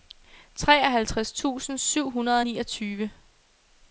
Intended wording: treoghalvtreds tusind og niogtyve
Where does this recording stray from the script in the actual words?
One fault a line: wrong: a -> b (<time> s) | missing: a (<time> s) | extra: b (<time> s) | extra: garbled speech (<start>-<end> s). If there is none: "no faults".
extra: syv hundrede (1.8 s)